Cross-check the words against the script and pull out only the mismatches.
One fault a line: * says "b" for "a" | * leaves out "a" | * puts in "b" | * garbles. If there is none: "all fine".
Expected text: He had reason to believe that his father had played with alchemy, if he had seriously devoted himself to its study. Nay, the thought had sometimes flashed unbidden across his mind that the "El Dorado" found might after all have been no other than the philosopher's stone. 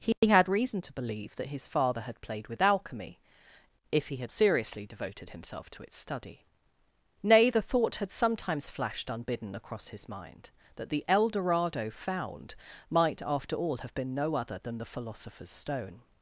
all fine